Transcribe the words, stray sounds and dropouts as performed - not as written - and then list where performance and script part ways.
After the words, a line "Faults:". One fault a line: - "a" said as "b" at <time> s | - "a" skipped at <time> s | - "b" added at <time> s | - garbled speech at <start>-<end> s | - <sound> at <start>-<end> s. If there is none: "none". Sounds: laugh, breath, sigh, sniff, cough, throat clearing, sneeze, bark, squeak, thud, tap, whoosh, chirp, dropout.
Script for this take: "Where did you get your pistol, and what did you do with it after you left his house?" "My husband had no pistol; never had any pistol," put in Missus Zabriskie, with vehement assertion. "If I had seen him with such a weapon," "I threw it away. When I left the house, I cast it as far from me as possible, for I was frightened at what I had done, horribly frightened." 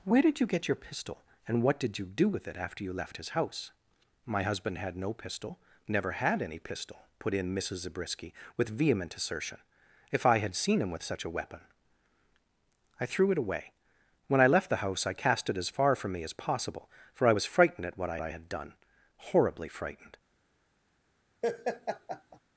"Where did you get your pistol, and what did you do with it after you left his house?" "My husband had no pistol; never had any pistol," put in Missus Zabriskie, with vehement assertion. "If I had seen him with such a weapon," "I threw it away. When I left the house, I cast it as far from me as possible, for I was frightened at what I I had done, horribly frightened."
Faults:
- "I" added at 18.2 s
- laugh at 21.4-22.4 s